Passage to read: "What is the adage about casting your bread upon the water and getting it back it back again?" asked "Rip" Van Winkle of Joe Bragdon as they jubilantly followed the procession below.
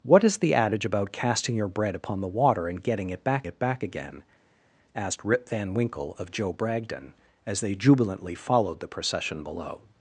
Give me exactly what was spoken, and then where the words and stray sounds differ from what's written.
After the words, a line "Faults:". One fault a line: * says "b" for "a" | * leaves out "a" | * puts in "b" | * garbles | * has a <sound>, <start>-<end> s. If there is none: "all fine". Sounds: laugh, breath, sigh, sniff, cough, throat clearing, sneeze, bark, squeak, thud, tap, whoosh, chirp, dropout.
"What is the adage about casting your bread upon the water and getting it back it back again?" asked "Rip" Van Winkle of Joe Bragdon as they jubilantly followed the procession below.
Faults:
all fine